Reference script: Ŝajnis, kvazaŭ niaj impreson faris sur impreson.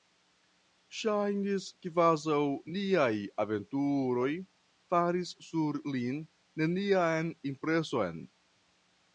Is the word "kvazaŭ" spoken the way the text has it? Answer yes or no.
yes